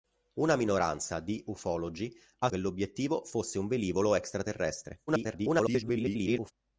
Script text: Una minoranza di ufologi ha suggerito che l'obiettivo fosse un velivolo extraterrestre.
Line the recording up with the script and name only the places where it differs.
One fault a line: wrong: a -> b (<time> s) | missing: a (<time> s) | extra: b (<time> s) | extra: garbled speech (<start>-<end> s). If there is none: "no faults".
missing: suggerito (2.5 s)
extra: garbled speech (5.1-6.5 s)